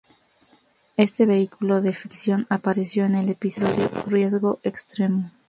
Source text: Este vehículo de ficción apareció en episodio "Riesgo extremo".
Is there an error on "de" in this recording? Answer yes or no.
no